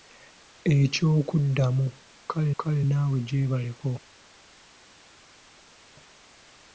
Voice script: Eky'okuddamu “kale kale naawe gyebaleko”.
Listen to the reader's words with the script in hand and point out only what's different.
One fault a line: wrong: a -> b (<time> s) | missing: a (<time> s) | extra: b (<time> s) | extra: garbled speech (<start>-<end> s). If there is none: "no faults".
no faults